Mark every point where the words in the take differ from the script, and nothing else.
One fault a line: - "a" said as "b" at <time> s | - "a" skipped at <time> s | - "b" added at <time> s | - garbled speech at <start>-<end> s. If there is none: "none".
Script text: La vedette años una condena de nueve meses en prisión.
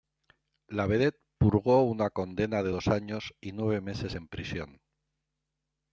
- "años" said as "purgó" at 1.4 s
- "dos años y" added at 2.7 s